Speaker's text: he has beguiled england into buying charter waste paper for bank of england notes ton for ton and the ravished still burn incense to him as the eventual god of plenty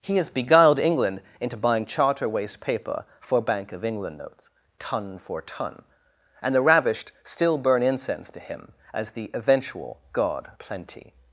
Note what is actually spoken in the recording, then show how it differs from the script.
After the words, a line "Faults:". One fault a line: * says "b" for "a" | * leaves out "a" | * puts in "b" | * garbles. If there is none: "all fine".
he has beguiled england into buying charter waste paper for bank of england notes ton for ton and the ravished still burn incense to him as the eventual god plenty
Faults:
* leaves out "of"